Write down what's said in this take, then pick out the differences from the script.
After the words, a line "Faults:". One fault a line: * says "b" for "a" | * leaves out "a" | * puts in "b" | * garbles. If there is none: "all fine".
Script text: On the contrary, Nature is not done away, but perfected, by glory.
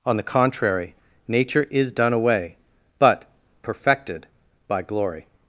On the contrary, Nature is done away, but perfected, by glory.
Faults:
* leaves out "not"